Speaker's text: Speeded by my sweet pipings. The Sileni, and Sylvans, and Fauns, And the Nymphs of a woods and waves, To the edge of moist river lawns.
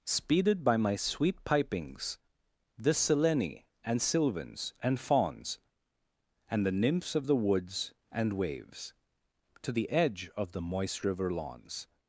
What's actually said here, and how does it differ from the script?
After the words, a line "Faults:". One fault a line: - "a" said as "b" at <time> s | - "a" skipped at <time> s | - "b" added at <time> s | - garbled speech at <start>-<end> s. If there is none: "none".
Speeded by my sweet pipings. The Sileni, and Sylvans, and Fauns, And the Nymphs of the woods and waves, To the edge of the moist river lawns.
Faults:
- "a" said as "the" at 7.3 s
- "the" added at 10.5 s